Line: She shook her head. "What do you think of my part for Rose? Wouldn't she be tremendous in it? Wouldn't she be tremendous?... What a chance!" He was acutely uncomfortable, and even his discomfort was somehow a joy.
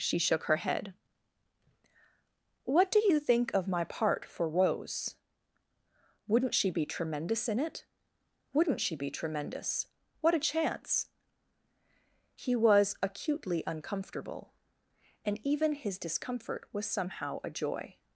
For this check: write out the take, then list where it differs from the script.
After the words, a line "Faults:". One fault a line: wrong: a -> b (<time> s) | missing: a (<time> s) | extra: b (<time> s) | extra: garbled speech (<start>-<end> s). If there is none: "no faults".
She shook her head. "What do you think of my part for Rose? Wouldn't she be tremendous in it? Wouldn't she be tremendous?... What a chance!" He was acutely uncomfortable, and even his discomfort was somehow a joy.
Faults:
no faults